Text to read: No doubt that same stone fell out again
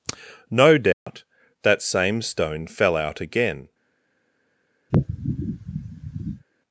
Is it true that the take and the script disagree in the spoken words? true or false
false